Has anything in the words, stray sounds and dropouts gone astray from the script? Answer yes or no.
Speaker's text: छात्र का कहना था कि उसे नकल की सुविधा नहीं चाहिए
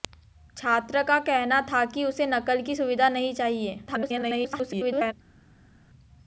yes